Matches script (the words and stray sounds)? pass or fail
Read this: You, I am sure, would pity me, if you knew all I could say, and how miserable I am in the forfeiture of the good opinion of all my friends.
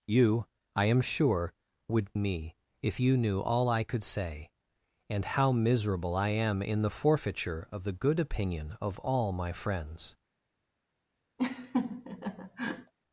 fail